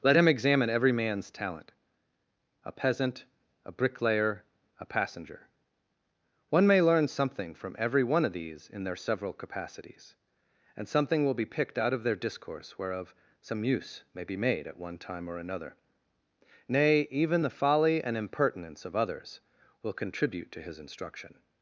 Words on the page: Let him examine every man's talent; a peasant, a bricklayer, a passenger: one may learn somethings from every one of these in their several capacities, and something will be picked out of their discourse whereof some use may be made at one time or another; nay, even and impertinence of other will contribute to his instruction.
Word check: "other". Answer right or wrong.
wrong